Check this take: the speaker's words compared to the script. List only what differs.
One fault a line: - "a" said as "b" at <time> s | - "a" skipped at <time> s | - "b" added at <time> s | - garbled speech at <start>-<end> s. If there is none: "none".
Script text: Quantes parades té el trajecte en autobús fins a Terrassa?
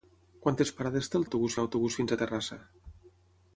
- "trajecte" said as "autobús" at 1.3 s